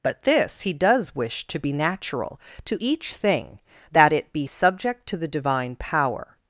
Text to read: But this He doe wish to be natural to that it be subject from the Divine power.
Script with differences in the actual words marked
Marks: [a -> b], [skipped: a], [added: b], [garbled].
But this He [doe -> does] wish to be natural to [added: each thing] that it be subject [from -> to] the Divine power.